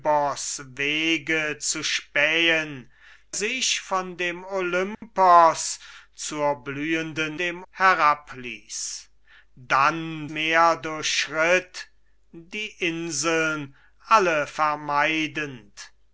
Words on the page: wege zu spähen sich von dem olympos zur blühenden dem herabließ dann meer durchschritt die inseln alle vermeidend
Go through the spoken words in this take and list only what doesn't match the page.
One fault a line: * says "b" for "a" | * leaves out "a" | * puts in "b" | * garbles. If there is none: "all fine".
all fine